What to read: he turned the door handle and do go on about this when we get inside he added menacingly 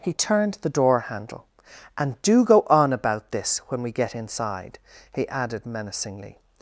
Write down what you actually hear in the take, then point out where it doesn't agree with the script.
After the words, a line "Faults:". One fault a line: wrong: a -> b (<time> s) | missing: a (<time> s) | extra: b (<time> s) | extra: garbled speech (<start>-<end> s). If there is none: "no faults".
he turned the door handle and do go on about this when we get inside he added menacingly
Faults:
no faults